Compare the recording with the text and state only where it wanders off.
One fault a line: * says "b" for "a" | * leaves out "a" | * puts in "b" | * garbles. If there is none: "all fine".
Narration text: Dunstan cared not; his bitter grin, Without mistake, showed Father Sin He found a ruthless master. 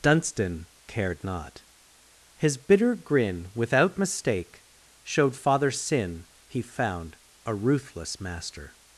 all fine